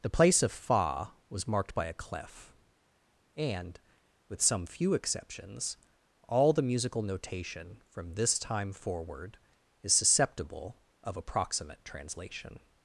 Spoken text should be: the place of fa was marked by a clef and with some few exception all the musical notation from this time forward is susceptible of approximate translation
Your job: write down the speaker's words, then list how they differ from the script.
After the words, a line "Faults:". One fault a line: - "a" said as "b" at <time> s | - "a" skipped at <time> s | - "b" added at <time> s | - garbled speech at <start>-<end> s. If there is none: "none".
the place of fa was marked by a clef and with some few exceptions all the musical notation from this time forward is susceptible of approximate translation
Faults:
- "exception" said as "exceptions" at 4.9 s